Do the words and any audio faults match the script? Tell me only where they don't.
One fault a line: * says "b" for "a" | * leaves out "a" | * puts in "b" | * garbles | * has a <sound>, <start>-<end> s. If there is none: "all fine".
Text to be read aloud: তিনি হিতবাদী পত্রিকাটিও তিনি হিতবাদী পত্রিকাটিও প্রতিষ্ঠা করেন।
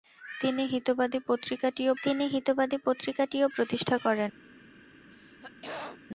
* has a throat clearing, 5.1-6.1 s